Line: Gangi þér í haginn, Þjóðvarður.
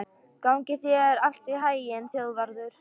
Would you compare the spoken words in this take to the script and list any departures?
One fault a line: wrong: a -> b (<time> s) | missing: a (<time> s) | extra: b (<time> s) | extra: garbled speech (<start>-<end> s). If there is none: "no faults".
extra: allt (1.3 s)